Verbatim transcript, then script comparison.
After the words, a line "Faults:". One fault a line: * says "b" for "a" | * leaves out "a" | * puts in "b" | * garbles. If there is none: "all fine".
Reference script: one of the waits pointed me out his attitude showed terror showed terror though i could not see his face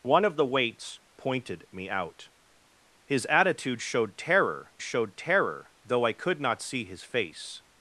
one of the waits pointed me out his attitude showed terror showed terror though i could not see his face
Faults:
all fine